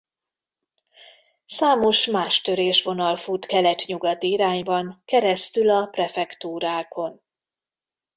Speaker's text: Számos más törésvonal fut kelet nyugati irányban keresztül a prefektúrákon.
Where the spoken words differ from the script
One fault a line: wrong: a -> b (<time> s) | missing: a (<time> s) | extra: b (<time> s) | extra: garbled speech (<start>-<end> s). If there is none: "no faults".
no faults